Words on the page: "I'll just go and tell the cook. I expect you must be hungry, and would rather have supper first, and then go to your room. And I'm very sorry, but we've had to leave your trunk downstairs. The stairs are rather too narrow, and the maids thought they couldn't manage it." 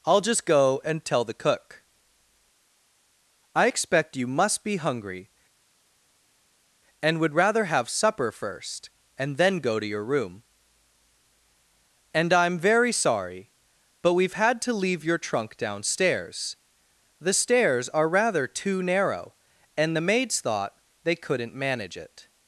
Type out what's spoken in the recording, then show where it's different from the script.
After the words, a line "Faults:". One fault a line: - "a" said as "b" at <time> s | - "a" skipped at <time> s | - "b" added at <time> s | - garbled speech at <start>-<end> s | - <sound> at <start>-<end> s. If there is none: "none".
"I'll just go and tell the cook. I expect you must be hungry, and would rather have supper first, and then go to your room. And I'm very sorry, but we've had to leave your trunk downstairs. The stairs are rather too narrow, and the maids thought they couldn't manage it."
Faults:
none